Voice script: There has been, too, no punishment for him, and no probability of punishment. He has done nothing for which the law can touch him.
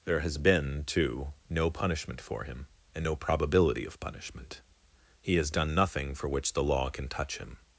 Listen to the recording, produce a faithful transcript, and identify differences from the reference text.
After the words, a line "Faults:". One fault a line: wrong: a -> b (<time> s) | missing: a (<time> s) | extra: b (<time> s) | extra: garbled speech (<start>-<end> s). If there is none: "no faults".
There has been, too, no punishment for him, and no probability of punishment. He has done nothing for which the law can touch him.
Faults:
no faults